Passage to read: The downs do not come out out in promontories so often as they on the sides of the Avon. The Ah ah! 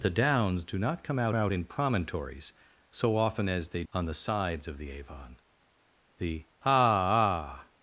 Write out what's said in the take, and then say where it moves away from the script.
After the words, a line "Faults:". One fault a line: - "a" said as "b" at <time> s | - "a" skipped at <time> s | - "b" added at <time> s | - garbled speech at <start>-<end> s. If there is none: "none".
The downs do not come out out in promontories so often as they on the sides of the Avon. The Ah ah!
Faults:
none